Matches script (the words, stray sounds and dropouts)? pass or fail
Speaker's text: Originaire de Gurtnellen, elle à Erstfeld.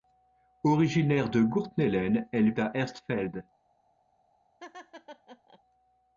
fail